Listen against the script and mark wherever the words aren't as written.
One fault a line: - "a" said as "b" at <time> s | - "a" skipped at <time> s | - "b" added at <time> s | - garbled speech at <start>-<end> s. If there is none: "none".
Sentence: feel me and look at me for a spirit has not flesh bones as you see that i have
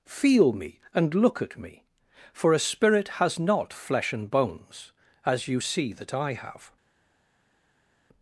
- "and" added at 4.1 s